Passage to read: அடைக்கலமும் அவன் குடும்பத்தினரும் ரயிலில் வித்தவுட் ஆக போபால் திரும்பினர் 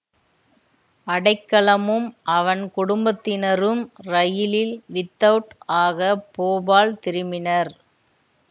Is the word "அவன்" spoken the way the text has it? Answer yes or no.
yes